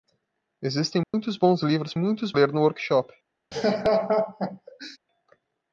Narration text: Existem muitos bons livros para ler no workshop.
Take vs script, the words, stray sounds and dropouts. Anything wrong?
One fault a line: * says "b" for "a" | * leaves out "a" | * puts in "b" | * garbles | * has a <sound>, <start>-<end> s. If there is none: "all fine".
* has a dropout, 1.0-1.1 s
* says "muitos" for "para"
* has a laugh, 3.5-5.0 s